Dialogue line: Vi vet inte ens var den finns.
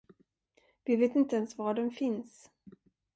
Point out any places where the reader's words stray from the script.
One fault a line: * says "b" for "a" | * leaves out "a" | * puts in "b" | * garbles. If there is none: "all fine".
all fine